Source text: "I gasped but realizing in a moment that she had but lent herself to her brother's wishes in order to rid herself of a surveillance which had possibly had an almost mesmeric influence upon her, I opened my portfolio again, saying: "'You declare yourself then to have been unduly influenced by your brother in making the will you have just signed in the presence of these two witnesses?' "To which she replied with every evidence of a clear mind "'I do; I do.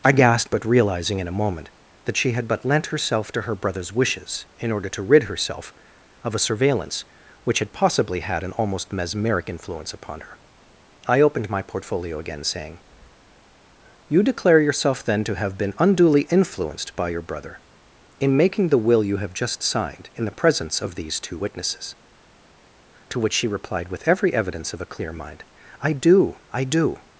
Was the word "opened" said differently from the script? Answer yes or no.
no